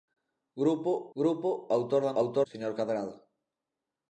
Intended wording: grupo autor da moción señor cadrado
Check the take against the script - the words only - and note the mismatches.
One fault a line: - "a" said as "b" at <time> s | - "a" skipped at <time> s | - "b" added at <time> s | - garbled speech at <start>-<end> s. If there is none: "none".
- "grupo" added at 1.2 s
- "moción" said as "autor" at 2.2 s